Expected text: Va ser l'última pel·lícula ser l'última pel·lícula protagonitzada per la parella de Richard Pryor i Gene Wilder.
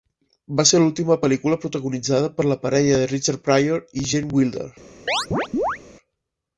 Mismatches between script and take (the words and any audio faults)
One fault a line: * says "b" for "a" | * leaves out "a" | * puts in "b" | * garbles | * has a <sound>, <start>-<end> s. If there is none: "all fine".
* leaves out "ser l'última pel·lícula"
* has a chirp, 5.1-5.8 s